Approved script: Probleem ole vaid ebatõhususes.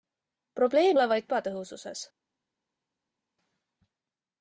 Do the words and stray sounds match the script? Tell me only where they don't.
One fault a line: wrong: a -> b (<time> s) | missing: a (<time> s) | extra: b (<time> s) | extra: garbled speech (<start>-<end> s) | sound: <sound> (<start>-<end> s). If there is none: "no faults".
no faults